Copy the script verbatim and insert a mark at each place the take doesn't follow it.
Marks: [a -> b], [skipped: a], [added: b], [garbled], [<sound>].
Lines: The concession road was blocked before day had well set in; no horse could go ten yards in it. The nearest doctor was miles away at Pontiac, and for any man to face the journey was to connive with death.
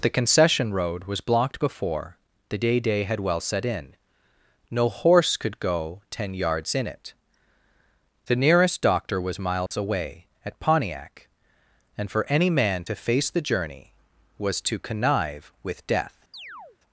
The concession road was blocked before [added: the day] day had well set in; no horse could go ten yards in it. The nearest doctor was miles [dropout] away at Pontiac, and for any man to face the journey was to connive with death. [chirp]